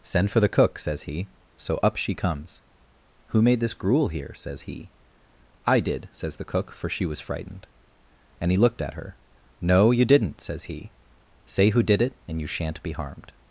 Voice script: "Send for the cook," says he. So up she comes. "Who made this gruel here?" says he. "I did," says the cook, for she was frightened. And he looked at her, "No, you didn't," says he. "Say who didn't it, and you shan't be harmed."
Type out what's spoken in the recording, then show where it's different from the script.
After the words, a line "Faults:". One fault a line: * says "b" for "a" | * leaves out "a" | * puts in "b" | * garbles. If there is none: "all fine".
"Send for the cook," says he. So up she comes. "Who made this gruel here?" says he. "I did," says the cook, for she was frightened. And he looked at her, "No, you didn't," says he. "Say who did it, and you shan't be harmed."
Faults:
* says "did" for "didn't"